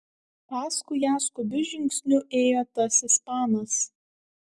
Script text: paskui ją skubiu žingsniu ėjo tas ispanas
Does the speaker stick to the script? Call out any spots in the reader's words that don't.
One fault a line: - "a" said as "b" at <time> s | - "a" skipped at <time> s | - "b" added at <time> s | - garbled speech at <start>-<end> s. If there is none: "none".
none